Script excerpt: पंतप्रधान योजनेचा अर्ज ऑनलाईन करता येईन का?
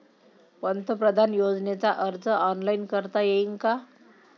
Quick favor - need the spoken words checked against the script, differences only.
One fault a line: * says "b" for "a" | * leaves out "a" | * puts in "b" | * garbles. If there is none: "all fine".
all fine